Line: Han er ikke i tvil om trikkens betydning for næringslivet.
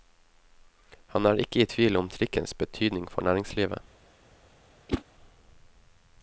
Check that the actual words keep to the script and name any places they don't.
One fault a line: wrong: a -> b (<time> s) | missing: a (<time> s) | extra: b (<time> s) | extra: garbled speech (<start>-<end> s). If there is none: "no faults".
no faults